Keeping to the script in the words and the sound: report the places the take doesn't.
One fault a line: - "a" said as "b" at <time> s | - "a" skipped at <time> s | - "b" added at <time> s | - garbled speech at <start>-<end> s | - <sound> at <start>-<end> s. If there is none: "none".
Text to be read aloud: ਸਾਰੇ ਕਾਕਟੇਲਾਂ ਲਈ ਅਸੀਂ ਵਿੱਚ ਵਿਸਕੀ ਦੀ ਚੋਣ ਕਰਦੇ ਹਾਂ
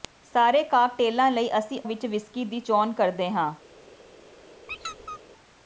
- squeak at 4.7-5.2 s